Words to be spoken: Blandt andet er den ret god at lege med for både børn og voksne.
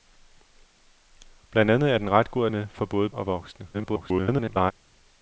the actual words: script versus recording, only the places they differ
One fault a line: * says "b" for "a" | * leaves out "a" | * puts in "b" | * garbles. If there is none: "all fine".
* leaves out "lege"
* leaves out "børn"
* garbles